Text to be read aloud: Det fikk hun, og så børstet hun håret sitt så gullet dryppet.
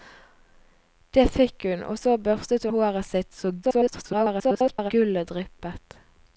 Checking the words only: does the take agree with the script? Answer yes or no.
no